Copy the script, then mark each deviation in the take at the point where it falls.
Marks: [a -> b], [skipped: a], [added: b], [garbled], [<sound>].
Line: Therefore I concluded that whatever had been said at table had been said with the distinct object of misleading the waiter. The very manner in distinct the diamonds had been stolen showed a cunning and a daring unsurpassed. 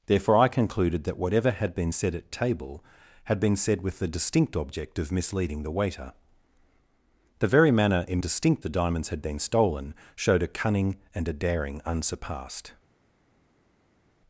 Therefore I concluded that whatever had been said at table had been said with the distinct object of misleading the waiter. The very manner in distinct the diamonds had been stolen showed a cunning and a daring unsurpassed.